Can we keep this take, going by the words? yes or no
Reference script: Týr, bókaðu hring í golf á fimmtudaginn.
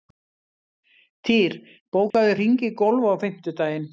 yes